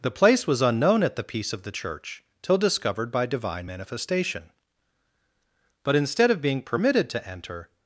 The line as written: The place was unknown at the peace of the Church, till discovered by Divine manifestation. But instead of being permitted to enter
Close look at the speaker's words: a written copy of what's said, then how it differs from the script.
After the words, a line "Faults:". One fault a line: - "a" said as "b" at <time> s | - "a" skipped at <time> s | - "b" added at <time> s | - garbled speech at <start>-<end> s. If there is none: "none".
The place was unknown at the peace of the Church, till discovered by Divine manifestation. But instead of being permitted to enter
Faults:
none